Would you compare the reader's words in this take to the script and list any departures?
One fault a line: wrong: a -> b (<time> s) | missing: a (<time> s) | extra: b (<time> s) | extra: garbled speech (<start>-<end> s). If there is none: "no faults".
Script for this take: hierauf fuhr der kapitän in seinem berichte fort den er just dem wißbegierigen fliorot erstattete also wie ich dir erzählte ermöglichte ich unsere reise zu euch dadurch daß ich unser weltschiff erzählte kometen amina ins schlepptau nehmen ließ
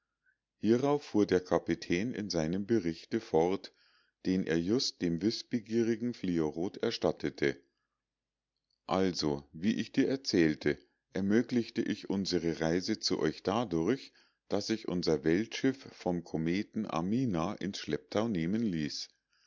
wrong: erzählte -> vom (15.9 s)